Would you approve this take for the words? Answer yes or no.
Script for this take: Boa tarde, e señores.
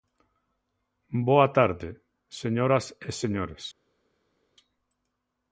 no